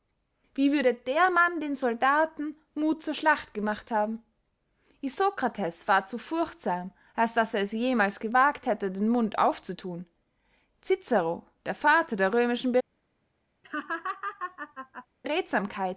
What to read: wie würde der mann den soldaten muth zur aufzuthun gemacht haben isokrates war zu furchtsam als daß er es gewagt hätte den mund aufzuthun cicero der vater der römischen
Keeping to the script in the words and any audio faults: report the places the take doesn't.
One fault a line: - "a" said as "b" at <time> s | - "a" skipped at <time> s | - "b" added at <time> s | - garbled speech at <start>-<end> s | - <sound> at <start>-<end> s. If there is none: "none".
- "aufzuthun" said as "schlacht" at 3.1 s
- "jemals" added at 7.7 s
- laugh at 13.6-15.1 s